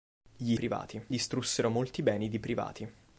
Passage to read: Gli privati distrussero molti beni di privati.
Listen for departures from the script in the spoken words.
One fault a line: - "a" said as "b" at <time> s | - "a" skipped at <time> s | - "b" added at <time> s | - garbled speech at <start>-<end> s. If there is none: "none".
none